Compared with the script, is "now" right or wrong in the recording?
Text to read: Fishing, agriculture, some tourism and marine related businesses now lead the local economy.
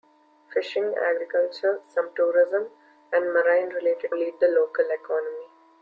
wrong